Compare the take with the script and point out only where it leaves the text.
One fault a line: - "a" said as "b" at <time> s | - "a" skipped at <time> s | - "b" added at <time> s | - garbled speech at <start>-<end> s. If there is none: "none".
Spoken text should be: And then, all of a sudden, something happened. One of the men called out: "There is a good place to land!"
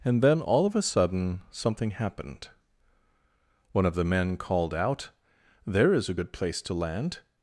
none